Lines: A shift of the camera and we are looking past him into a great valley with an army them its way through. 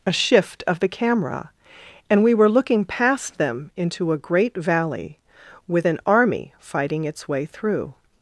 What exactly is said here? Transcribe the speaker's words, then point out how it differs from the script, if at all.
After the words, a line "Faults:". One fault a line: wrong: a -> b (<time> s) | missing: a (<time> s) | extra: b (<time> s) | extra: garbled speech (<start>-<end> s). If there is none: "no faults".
A shift of the camera and we were looking past them into a great valley with an army fighting its way through.
Faults:
wrong: are -> were (2.3 s)
wrong: him -> them (3.4 s)
wrong: them -> fighting (6.6 s)